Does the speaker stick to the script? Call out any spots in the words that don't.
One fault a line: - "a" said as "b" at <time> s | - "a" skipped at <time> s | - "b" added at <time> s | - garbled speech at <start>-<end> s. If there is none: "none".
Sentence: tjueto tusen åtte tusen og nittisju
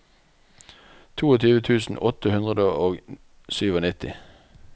- "tusen" said as "hundre" at 2.4 s